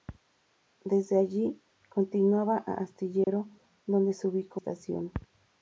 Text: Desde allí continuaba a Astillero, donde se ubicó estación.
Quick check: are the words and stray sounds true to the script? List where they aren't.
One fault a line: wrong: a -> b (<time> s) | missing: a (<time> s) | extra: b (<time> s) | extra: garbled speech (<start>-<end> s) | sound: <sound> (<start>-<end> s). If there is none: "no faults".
sound: dropout (3.2-3.3 s)